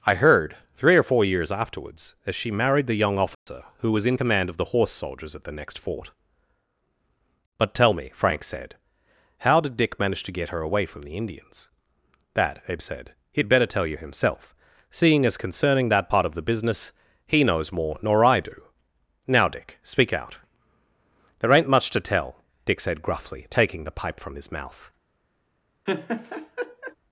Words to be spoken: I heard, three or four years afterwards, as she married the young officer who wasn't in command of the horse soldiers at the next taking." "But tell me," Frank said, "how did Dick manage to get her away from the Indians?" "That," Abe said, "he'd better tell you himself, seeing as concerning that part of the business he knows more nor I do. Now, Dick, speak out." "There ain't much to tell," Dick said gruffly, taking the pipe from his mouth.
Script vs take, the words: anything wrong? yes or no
yes